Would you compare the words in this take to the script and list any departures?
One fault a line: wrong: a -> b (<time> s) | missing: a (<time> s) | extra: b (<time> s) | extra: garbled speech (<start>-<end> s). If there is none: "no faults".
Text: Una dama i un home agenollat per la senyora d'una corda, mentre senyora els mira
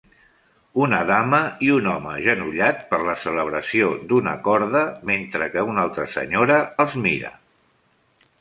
wrong: senyora -> celebració (3.2 s)
extra: que una altra (5.6 s)